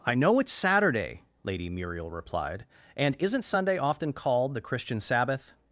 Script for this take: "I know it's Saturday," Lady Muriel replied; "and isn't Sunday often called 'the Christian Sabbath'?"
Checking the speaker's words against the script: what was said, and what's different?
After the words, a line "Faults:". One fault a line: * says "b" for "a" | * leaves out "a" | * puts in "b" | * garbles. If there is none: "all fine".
"I know it's Saturday," Lady Muriel replied; "and isn't Sunday often called 'the Christian Sabbath'?"
Faults:
all fine